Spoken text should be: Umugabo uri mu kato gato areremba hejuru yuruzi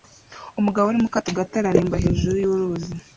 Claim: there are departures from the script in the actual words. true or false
false